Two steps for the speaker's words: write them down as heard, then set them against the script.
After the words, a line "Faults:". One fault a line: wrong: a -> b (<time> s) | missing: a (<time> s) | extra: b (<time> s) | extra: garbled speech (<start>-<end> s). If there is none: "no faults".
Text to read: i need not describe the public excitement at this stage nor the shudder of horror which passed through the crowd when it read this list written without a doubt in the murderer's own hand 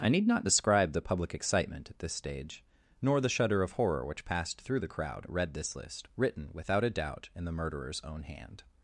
i need not describe the public excitement at this stage nor the shudder of horror which passed through the crowd it read this list written without a doubt in the murderer's own hand
Faults:
missing: when (5.2 s)